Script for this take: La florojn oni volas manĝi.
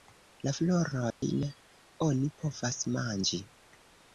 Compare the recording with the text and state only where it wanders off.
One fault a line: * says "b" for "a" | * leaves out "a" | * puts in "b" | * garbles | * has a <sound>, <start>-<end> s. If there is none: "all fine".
* has a dropout, 1.1-1.2 s
* says "povas" for "volas"